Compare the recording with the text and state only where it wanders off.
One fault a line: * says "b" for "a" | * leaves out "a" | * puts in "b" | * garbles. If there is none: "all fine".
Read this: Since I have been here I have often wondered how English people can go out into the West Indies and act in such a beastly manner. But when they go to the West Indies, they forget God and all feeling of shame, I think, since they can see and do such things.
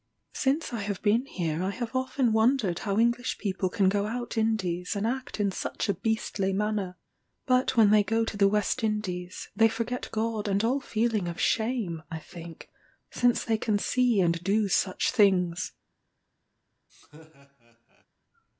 * leaves out "into the West"